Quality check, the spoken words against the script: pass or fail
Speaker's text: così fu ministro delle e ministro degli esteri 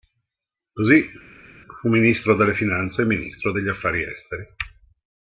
fail